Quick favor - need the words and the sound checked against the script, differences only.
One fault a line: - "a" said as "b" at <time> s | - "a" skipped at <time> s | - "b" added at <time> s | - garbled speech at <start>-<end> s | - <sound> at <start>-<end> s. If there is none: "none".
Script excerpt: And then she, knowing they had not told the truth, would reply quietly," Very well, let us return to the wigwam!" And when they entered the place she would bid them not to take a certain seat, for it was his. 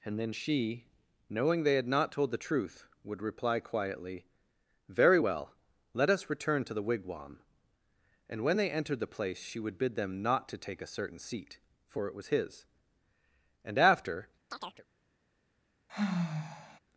- "And after" added at 13.6 s
- chirp at 14.5-14.9 s
- sigh at 15.9-16.8 s